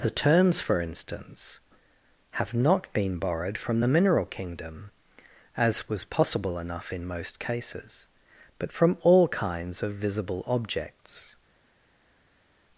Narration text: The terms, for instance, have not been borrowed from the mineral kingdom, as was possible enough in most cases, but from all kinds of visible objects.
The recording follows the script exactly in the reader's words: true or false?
true